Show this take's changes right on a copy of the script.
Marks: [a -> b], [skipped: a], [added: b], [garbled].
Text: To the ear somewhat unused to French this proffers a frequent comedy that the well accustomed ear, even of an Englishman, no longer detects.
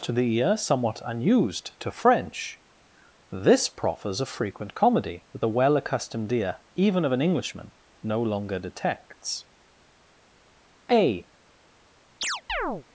To the ear somewhat unused to French this proffers a frequent comedy that the well accustomed ear, even of an Englishman, no longer detects. [added: A]